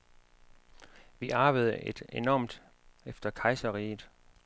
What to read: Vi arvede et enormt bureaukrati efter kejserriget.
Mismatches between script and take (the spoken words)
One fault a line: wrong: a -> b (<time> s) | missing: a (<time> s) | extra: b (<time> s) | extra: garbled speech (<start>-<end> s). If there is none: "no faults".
missing: bureaukrati (2.6 s)